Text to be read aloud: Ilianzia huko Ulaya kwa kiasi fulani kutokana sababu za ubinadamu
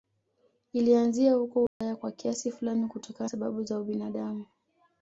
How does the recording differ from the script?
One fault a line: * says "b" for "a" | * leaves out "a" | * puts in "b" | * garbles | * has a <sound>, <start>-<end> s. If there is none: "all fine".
* has a dropout, 1.7-1.8 s